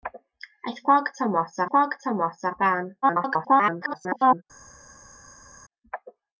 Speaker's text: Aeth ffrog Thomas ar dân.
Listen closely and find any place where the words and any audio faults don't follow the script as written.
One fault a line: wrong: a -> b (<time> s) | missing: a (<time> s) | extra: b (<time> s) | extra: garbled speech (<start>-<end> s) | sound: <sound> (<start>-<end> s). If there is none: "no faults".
extra: ffrog Thomas (1.6 s)
extra: garbled speech (3.0-4.4 s)